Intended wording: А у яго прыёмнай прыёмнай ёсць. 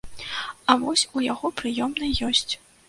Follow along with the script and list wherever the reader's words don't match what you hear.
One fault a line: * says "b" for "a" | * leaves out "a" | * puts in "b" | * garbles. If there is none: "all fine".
* puts in "вось"
* leaves out "прыёмнай"